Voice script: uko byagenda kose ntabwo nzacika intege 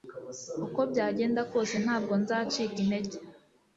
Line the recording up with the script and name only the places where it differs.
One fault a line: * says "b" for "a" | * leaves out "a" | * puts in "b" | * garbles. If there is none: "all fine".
all fine